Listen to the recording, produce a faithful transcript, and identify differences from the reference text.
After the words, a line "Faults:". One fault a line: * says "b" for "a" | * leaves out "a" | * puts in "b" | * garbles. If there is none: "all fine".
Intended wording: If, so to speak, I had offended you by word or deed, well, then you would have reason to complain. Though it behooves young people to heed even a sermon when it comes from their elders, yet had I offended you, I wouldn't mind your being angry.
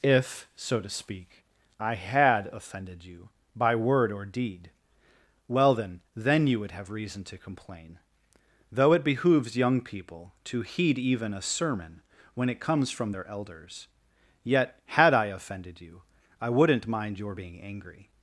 If, so to speak, I had offended you by word or deed, well, then then you would have reason to complain. Though it behooves young people to heed even a sermon when it comes from their elders, yet had I offended you, I wouldn't mind your being angry.
Faults:
* puts in "then"